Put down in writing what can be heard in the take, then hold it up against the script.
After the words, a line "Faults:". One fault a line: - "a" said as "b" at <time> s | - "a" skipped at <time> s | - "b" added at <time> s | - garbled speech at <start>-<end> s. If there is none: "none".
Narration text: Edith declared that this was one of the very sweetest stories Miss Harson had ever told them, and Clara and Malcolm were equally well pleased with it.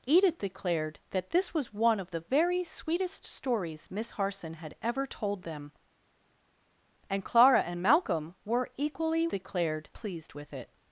Edith declared that this was one of the very sweetest stories Miss Harson had ever told them, and Clara and Malcolm were equally declared pleased with it.
Faults:
- "well" said as "declared" at 9.3 s